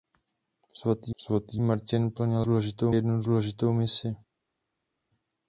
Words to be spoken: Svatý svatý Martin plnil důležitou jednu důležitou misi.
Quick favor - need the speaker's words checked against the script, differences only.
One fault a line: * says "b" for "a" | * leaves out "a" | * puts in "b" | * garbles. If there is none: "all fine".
all fine